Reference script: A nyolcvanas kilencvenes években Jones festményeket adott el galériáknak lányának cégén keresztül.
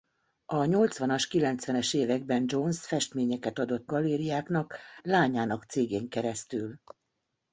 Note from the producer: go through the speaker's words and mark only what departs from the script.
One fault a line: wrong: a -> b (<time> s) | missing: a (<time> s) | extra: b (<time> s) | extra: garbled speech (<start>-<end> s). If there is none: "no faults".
missing: el (3.9 s)